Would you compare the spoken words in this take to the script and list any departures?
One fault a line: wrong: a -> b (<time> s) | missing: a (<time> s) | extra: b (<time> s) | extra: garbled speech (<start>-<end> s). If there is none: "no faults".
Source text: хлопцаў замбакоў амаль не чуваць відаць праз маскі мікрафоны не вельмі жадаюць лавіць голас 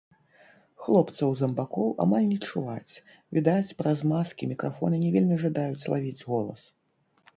no faults